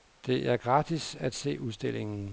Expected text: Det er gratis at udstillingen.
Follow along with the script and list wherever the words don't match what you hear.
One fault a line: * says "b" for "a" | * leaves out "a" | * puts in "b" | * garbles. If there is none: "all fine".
* puts in "se"